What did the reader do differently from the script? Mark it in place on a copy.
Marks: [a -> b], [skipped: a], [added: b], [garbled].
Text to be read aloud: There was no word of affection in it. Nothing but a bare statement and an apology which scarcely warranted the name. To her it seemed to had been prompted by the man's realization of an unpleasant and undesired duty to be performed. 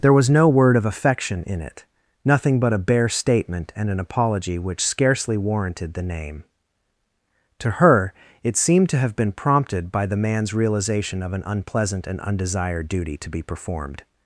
There was no word of affection in it. Nothing but a bare statement and an apology which scarcely warranted the name. To her it seemed to [had -> have] been prompted by the man's realization of an unpleasant and undesired duty to be performed.